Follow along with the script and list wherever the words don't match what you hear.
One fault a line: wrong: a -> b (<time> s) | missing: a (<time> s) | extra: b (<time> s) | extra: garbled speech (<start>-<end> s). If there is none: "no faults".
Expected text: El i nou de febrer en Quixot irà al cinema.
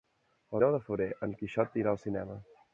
no faults